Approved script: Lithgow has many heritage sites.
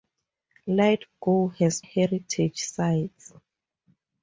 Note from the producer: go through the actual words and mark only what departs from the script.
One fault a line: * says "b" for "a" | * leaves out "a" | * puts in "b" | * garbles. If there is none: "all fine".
* leaves out "many"